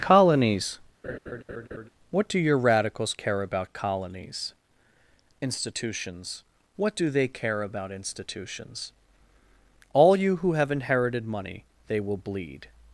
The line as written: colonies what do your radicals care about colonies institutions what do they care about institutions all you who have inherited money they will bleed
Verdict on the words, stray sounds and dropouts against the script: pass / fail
fail